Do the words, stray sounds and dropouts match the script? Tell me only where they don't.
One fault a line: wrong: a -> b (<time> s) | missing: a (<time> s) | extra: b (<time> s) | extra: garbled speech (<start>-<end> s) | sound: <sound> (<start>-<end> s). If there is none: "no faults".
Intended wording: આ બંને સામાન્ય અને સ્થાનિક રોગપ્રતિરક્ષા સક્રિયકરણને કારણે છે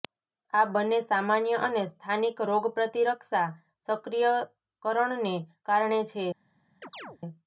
sound: chirp (6.8-7.2 s)